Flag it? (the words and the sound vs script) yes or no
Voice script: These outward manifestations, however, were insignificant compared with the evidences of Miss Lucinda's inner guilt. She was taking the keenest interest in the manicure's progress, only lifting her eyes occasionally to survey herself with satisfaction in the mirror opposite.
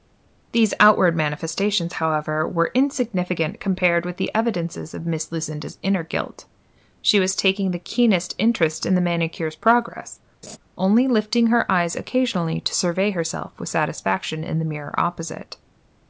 yes